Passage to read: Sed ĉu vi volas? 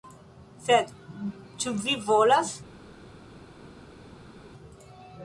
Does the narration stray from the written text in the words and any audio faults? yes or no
no